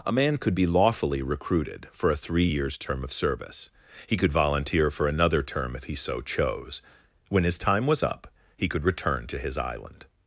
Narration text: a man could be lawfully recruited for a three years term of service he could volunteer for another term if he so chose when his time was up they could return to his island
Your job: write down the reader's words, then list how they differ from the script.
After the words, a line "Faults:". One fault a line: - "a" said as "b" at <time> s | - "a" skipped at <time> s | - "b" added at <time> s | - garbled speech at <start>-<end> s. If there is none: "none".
a man could be lawfully recruited for a three years term of service he could volunteer for another term if he so chose when his time was up he could return to his island
Faults:
- "they" said as "he" at 8.6 s